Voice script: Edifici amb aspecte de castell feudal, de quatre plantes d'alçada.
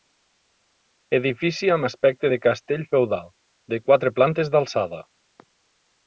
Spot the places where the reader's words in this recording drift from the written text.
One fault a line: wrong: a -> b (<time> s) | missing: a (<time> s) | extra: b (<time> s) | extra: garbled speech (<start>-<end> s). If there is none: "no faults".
no faults